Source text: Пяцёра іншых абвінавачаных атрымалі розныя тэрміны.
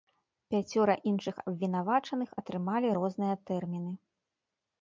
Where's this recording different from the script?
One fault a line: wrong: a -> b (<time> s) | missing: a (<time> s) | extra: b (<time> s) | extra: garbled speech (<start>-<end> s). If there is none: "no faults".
no faults